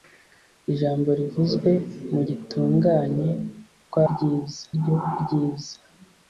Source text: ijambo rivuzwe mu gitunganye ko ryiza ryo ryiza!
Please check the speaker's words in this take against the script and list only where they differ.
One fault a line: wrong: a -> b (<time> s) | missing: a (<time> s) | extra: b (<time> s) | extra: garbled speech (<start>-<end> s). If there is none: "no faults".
no faults